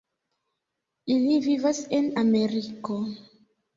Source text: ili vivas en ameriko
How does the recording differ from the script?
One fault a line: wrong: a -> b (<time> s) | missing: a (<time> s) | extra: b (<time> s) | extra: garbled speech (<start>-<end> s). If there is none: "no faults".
no faults